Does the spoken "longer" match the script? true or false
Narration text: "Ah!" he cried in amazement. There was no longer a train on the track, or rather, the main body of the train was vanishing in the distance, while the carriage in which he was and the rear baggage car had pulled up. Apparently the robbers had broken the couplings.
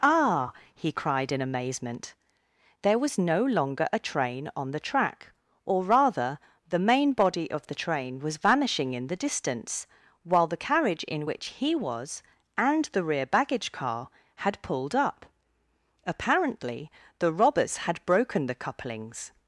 true